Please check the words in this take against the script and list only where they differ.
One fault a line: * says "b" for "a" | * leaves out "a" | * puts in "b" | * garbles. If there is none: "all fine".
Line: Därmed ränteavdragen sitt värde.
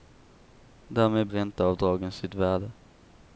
all fine